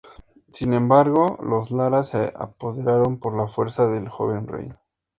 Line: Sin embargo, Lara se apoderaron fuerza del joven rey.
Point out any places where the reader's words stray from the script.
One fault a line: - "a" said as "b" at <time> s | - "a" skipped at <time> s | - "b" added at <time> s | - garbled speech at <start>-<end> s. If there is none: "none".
- "los" added at 1.4 s
- "por la" added at 3.2 s